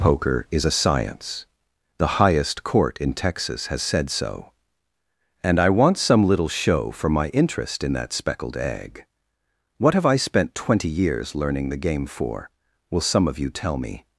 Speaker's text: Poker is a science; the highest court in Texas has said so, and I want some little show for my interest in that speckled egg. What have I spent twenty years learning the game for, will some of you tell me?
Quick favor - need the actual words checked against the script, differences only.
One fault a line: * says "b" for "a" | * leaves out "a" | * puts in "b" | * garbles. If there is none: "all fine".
all fine